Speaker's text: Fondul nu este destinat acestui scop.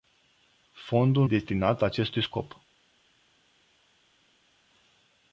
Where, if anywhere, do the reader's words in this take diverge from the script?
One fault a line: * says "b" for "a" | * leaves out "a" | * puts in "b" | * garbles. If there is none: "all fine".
* leaves out "nu este"